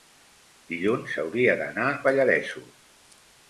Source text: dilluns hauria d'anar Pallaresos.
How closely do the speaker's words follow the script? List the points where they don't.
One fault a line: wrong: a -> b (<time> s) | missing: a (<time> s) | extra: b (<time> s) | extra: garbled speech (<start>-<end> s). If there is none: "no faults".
no faults